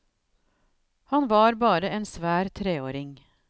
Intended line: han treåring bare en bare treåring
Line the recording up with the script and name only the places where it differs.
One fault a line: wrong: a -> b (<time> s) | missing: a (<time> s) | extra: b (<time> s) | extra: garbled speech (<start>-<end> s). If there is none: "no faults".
wrong: treåring -> var (1.3 s)
wrong: bare -> svær (2.0 s)